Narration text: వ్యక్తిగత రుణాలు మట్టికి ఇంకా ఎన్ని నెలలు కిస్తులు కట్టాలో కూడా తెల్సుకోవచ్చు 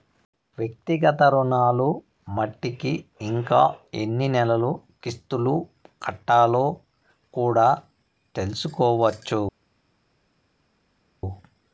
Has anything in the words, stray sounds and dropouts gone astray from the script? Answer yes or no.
no